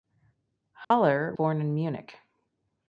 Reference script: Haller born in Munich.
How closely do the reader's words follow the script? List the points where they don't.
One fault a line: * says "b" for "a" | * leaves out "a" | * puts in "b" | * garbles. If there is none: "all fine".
all fine